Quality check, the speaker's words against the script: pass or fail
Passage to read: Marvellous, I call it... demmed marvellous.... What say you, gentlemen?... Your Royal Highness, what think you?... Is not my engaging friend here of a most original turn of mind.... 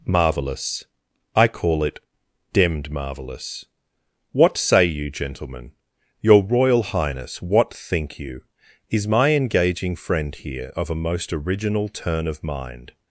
fail